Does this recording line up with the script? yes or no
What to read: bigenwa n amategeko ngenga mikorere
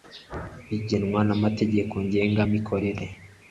yes